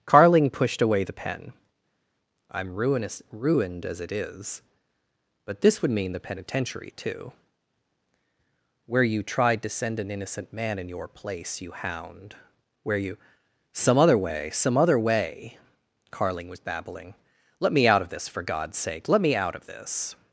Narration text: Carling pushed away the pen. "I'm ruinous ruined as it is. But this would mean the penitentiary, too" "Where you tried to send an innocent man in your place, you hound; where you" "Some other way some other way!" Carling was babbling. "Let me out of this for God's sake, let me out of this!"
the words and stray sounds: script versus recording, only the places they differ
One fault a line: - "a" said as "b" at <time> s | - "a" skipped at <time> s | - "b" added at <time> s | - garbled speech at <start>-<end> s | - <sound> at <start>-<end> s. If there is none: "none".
none